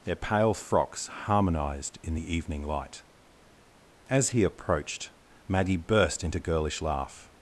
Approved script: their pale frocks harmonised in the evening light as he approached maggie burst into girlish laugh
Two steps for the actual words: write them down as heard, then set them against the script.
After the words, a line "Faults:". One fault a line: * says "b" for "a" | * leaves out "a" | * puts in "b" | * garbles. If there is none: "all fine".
their pale frocks harmonised in the evening light as he approached maggie burst into girlish laugh
Faults:
all fine